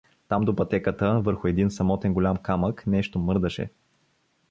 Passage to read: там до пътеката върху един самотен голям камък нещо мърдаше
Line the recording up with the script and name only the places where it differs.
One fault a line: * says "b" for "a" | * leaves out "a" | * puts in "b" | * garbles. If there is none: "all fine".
all fine